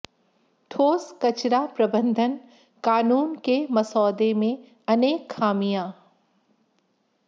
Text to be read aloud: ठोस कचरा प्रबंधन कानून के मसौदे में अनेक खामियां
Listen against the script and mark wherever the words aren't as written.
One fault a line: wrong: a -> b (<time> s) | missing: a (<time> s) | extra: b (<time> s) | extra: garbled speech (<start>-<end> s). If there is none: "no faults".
no faults